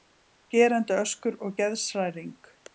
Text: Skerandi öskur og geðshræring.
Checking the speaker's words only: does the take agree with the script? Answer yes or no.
yes